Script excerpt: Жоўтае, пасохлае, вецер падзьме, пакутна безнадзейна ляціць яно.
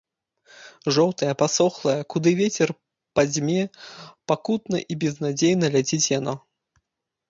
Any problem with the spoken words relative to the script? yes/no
yes